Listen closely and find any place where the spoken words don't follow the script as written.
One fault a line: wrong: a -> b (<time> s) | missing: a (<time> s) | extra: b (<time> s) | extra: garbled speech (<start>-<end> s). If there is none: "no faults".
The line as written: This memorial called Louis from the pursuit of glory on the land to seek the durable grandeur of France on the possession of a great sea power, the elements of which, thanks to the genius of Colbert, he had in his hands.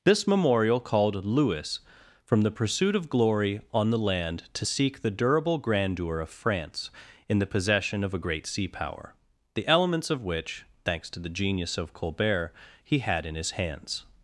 wrong: on -> in (7.3 s)